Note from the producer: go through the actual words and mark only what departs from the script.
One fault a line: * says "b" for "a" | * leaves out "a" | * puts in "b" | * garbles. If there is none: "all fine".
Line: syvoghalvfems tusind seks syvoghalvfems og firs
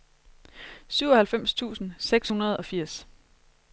* says "hundrede" for "syvoghalvfems"